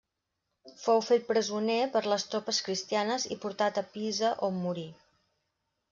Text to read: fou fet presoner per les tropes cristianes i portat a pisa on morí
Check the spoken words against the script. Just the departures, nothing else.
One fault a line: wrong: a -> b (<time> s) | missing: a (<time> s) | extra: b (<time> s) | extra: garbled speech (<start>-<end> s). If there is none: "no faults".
no faults